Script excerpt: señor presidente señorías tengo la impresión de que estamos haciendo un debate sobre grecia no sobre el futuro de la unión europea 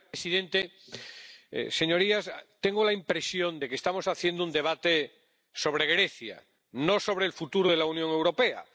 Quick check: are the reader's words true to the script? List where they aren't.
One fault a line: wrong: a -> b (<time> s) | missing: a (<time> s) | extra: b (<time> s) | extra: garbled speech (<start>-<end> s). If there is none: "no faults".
no faults